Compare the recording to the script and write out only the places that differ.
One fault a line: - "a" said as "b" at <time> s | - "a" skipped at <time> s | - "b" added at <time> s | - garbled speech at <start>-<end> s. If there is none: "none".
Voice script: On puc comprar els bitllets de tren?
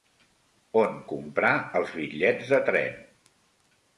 - "puc" skipped at 0.9 s